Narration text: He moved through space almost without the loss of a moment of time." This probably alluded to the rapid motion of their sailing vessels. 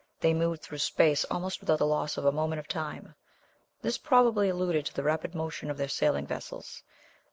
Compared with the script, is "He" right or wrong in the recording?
wrong